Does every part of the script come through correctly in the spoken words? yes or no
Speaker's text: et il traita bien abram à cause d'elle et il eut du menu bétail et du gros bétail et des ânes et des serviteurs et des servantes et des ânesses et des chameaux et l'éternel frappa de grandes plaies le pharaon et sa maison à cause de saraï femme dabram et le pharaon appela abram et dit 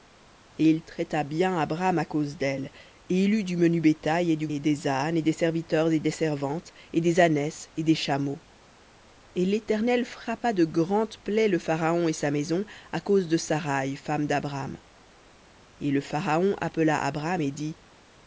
no